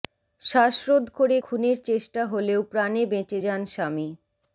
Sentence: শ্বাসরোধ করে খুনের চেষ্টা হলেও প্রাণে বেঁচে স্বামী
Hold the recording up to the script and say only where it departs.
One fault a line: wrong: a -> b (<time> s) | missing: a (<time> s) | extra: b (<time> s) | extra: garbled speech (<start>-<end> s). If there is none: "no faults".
extra: যান (3.4 s)